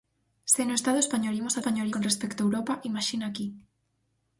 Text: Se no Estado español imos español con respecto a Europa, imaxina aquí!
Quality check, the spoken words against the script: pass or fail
pass